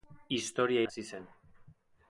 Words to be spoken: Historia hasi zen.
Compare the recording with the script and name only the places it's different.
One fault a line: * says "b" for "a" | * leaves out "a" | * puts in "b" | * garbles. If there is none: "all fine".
all fine